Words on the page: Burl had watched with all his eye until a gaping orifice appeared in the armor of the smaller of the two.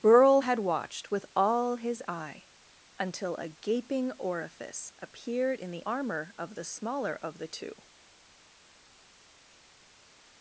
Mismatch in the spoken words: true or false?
false